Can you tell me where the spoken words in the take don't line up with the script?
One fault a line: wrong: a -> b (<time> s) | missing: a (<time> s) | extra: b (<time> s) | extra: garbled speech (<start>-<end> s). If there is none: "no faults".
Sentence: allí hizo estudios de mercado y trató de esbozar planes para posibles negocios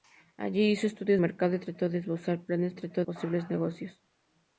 missing: de (1.2 s)
wrong: para -> trató (2.8 s)